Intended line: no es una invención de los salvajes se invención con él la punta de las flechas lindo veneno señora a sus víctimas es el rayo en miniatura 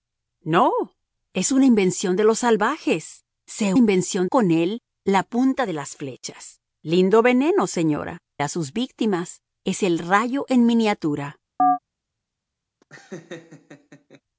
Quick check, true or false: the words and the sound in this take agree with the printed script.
false